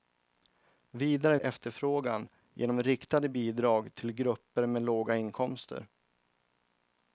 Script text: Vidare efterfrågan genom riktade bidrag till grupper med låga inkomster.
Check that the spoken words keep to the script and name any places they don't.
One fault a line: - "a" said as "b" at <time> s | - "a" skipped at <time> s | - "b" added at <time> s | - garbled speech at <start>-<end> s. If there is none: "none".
none